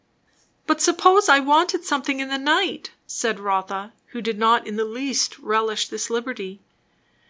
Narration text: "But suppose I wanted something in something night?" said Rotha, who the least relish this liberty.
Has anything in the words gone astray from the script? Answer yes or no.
yes